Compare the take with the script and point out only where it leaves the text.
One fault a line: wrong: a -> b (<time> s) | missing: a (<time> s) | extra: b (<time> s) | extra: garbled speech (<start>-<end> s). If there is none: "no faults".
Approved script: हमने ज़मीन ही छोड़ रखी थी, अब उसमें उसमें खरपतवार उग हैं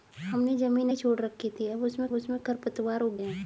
no faults